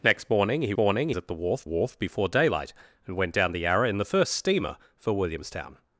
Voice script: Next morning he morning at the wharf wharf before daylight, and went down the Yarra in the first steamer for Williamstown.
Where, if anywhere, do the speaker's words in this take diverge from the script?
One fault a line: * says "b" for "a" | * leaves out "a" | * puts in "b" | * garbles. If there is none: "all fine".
all fine